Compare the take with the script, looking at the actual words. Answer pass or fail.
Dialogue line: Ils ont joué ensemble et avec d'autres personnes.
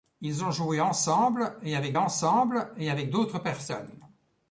fail